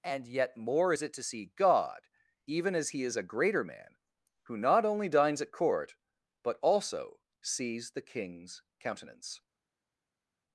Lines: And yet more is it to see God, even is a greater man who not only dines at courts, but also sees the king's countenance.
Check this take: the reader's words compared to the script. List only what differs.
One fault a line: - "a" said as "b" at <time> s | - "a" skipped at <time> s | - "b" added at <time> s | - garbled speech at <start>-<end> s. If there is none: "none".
- "as he" added at 2.8 s
- "courts" said as "court" at 5.5 s